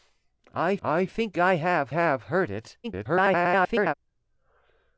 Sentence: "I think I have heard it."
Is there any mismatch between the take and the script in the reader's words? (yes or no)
yes